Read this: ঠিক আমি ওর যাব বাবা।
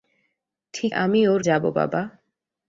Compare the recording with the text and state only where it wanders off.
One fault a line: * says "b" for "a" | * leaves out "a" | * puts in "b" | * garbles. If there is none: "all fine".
all fine